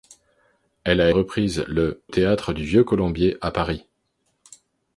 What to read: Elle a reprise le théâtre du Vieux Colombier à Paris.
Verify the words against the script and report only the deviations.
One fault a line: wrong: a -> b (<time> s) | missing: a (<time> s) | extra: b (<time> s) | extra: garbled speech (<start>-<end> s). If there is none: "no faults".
no faults